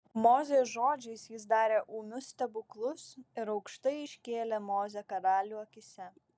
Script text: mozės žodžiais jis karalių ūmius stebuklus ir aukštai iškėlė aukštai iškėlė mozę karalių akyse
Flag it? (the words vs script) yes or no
yes